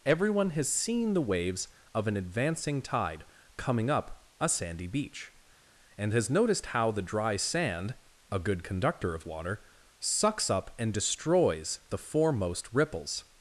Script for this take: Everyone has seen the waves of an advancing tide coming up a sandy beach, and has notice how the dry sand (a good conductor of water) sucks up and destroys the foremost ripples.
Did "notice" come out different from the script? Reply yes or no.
yes